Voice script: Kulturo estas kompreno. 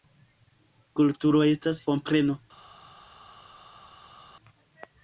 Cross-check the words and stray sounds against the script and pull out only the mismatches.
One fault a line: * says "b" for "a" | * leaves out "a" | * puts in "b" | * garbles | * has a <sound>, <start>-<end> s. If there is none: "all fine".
all fine